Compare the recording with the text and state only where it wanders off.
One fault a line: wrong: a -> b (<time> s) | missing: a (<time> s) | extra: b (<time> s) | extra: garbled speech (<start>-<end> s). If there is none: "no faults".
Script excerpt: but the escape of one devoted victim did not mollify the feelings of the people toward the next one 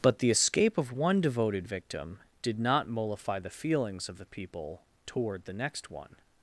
no faults